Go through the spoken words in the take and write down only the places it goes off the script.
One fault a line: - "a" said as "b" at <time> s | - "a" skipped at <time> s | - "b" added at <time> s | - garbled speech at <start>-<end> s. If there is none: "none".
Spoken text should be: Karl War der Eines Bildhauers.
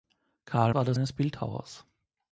none